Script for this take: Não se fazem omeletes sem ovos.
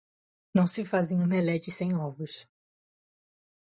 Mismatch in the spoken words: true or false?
false